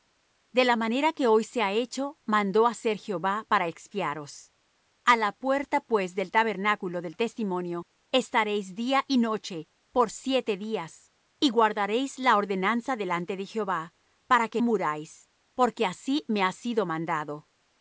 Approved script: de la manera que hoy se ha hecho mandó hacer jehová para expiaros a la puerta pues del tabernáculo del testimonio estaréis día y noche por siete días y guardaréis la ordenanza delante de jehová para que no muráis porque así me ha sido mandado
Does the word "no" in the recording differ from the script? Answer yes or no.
yes